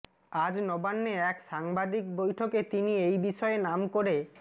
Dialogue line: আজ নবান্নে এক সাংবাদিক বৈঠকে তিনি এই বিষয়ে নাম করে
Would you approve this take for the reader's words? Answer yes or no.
yes